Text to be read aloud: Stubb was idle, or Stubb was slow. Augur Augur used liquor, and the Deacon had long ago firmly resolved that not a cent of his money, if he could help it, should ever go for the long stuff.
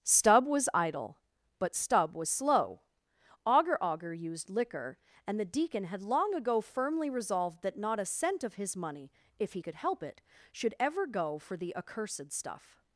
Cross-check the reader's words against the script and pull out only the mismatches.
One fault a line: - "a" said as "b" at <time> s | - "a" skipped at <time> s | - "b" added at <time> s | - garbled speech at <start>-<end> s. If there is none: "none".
- "or" said as "but" at 1.6 s
- "long" said as "accursed" at 11.7 s